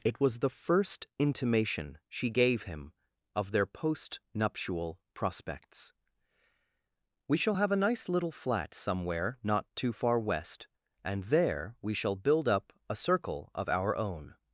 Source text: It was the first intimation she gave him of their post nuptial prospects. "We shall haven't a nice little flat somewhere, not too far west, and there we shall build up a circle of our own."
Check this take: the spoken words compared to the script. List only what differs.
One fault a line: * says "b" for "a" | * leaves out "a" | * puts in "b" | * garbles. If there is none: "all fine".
* says "have" for "haven't"